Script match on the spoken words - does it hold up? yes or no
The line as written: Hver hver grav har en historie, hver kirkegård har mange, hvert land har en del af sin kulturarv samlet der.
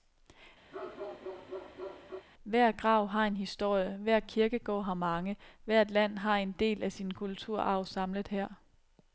no